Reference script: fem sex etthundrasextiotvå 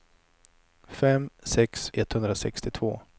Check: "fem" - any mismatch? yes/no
no